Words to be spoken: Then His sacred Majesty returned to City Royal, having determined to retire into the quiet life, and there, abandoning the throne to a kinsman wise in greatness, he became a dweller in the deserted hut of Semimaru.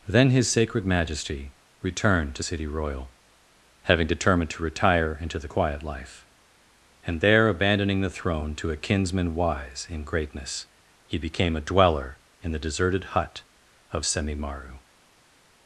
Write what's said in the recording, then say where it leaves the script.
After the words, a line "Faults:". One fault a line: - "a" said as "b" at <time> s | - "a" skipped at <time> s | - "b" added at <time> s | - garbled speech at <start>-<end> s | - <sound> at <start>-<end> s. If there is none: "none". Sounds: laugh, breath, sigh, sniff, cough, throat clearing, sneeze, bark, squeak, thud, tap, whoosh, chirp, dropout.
Then His sacred Majesty returned to City Royal, having determined to retire into the quiet life, and there, abandoning the throne to a kinsman wise in greatness, he became a dweller in the deserted hut of Semimaru.
Faults:
none